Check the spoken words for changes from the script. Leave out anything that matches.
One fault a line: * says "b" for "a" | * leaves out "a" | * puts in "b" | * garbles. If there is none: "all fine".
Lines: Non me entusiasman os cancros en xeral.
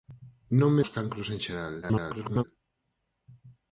* leaves out "entusiasman"
* garbles